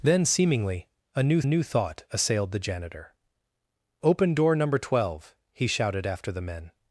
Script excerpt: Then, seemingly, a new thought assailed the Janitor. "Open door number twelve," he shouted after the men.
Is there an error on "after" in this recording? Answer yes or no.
no